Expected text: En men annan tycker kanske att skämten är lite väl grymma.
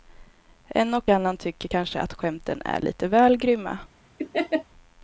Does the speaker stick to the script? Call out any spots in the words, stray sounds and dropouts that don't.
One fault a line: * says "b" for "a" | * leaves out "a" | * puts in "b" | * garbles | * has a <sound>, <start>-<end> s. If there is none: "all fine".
* says "och" for "men"
* has a laugh, 4.2-4.6 s